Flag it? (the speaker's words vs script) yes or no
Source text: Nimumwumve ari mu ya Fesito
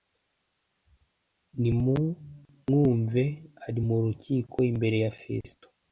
yes